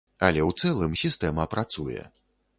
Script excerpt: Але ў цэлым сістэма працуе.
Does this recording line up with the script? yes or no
yes